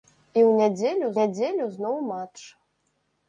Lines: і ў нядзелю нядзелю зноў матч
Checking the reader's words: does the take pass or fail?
pass